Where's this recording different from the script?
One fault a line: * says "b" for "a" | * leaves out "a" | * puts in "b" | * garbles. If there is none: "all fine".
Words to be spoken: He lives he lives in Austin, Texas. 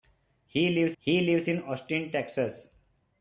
all fine